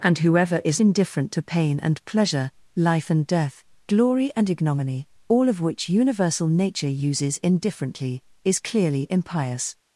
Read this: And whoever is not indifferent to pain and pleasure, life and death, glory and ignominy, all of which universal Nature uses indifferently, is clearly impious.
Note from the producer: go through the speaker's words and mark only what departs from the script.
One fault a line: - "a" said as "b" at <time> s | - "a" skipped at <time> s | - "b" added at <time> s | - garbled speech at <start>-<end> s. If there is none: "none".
- "not" skipped at 0.8 s